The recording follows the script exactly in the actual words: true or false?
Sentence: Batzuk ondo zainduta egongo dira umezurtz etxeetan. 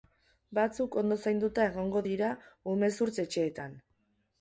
true